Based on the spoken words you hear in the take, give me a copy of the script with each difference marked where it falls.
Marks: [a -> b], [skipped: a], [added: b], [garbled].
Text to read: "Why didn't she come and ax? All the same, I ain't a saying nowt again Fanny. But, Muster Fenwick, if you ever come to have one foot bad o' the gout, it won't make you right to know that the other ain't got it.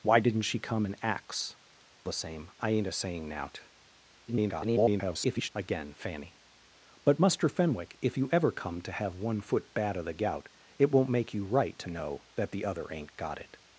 "Why didn't she come and ax? [skipped: All] the same, I ain't a saying nowt [garbled] again Fanny. But, Muster Fenwick, if you ever come to have one foot bad o' the gout, it won't make you right to know that the other ain't got it.